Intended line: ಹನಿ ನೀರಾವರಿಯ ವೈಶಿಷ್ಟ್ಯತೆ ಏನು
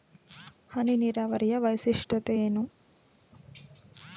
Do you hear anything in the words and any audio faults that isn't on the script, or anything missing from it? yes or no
no